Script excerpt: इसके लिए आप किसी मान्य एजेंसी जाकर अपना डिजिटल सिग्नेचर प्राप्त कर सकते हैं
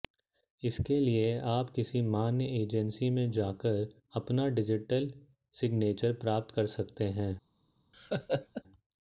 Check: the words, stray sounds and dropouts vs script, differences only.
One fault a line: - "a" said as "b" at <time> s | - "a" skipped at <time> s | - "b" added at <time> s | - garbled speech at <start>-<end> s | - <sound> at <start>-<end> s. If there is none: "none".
- "में" added at 3.1 s
- laugh at 7.9-8.6 s